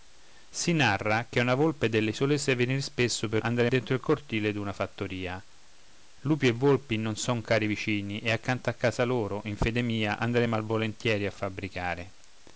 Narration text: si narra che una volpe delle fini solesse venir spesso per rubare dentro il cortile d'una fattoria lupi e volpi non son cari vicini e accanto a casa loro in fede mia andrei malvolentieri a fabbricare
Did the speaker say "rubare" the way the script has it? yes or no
no